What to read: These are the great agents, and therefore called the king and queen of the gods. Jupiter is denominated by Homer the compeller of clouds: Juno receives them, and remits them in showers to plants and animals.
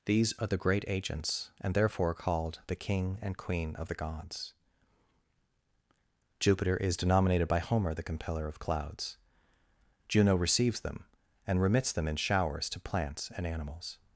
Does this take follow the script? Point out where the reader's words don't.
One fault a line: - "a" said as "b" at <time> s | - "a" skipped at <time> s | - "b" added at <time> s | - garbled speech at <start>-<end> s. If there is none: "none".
none